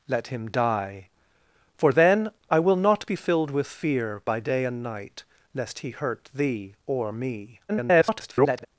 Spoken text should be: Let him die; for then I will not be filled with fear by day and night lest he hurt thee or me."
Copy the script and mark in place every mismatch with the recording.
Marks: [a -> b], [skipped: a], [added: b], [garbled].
Let him die; for then I will not be filled with fear by day and night lest he hurt thee or me." [garbled]